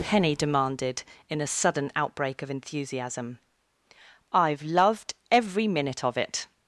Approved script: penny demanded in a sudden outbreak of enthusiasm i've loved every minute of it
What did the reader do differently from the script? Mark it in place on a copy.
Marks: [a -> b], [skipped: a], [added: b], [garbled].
penny demanded in a sudden outbreak of enthusiasm i've loved every minute of it